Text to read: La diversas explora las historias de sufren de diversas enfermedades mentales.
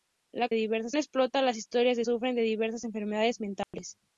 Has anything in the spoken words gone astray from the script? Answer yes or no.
no